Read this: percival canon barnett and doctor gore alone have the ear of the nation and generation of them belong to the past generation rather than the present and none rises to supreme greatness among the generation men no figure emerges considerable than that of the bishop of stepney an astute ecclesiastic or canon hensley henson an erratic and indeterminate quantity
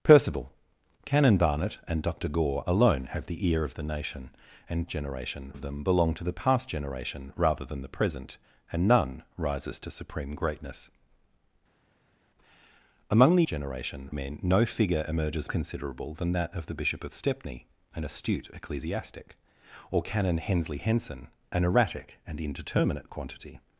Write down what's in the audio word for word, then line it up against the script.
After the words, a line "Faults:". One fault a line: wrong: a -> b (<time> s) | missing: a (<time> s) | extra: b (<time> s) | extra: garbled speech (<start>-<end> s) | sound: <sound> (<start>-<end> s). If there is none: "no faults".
percival canon barnett and doctor gore alone have the ear of the nation and generation of them belong to the past generation rather than the present and none rises to supreme greatness among the generation men no figure emerges considerable than that of the bishop of stepney an astute ecclesiastic or canon hensley henson an erratic and indeterminate quantity
Faults:
no faults